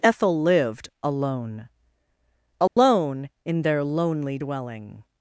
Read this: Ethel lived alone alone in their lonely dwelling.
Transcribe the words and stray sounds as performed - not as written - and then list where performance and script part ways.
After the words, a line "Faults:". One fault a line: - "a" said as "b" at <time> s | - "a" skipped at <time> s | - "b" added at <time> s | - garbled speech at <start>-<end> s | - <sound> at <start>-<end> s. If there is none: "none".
Ethel lived alone alone in their lonely dwelling.
Faults:
- dropout at 2.7-2.8 s